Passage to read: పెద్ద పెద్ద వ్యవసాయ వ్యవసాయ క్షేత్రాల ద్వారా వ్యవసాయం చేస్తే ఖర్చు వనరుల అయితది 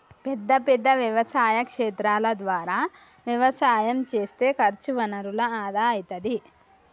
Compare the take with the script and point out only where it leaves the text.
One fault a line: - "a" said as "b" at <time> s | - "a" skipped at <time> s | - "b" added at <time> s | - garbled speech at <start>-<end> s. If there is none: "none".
- "వ్యవసాయ" skipped at 1.6 s
- "ఆదా" added at 5.6 s